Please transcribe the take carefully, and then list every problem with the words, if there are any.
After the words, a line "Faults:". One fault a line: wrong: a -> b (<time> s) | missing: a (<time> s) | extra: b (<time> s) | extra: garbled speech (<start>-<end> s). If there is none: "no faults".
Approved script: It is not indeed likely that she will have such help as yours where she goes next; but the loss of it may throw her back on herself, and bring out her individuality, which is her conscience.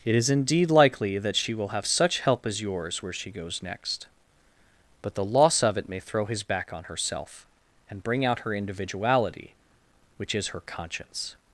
It is indeed likely that she will have such help as yours where she goes next; but the loss of it may throw his back on herself, and bring out her individuality, which is her conscience.
Faults:
missing: not (0.3 s)
wrong: her -> his (6.3 s)